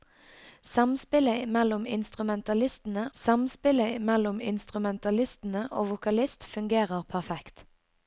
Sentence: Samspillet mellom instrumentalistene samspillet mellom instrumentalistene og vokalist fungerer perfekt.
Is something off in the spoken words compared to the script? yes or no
no